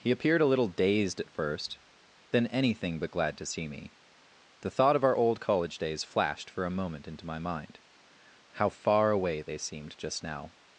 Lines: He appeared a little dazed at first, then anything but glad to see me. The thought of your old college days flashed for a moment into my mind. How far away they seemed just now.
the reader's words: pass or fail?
fail